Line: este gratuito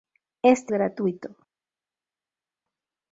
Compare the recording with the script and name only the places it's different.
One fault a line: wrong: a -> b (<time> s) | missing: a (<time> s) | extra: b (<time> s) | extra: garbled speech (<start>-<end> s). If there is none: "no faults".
no faults